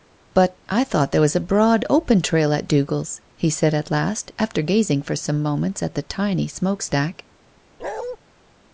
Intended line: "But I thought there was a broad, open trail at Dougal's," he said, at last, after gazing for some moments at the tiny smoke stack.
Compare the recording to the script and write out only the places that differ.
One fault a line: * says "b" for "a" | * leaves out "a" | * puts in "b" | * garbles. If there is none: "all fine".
all fine